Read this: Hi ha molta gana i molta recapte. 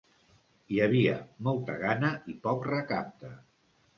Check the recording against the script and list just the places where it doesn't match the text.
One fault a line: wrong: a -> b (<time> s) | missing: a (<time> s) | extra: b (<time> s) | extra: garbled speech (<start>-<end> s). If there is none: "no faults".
wrong: ha -> havia (0.8 s)
wrong: molta -> poc (2.5 s)